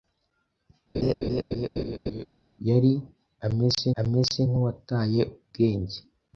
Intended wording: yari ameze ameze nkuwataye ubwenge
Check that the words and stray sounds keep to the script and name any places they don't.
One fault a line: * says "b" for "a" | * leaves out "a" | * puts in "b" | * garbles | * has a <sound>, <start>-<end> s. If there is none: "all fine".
* has a laugh, 0.9-2.3 s